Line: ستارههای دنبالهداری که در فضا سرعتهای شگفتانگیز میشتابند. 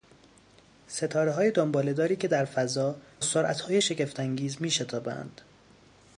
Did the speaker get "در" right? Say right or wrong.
right